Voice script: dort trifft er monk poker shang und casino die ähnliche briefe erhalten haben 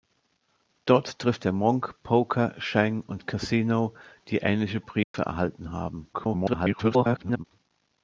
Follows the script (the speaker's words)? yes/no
no